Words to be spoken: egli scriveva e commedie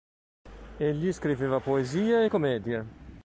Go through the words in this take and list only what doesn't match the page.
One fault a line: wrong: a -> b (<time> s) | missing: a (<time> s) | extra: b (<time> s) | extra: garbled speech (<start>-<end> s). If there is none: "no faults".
extra: poesie (1.6 s)